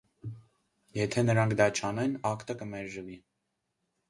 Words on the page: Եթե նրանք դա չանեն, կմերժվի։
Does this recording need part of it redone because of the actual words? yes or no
yes